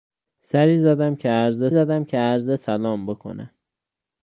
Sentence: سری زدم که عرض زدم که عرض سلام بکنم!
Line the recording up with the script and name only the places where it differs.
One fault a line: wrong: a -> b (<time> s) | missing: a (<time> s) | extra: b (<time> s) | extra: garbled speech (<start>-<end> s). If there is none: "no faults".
no faults